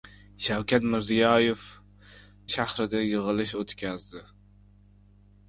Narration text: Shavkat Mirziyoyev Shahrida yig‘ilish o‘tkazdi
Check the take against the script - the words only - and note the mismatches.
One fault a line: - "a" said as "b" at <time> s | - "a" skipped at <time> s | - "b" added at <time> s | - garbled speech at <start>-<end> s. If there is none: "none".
none